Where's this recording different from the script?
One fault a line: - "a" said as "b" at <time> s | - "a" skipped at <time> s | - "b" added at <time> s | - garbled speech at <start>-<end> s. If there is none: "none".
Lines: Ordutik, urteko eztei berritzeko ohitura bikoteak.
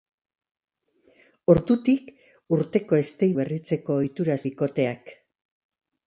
none